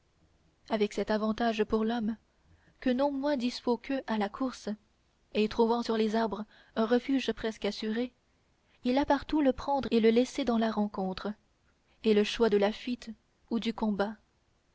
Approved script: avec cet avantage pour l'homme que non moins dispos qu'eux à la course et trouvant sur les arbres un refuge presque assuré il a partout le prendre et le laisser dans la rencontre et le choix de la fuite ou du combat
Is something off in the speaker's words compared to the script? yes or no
no